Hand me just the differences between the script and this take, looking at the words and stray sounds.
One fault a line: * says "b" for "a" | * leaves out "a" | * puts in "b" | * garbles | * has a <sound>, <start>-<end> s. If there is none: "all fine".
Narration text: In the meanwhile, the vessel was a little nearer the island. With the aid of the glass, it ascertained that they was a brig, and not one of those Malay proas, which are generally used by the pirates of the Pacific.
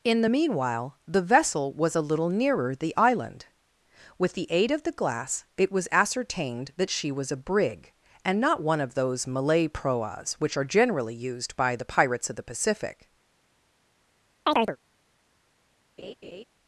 * puts in "was"
* says "she" for "they"
* has a chirp, 14.5-14.8 s
* has a laugh, 16.0-16.4 s